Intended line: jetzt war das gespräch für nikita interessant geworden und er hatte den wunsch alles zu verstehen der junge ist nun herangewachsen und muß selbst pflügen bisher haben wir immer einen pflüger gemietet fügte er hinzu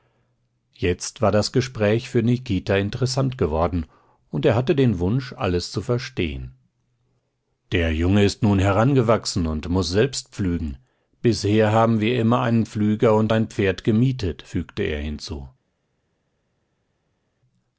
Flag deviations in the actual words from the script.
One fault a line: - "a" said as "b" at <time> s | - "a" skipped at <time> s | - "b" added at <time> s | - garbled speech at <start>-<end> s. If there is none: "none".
- "und ein pferd" added at 13.1 s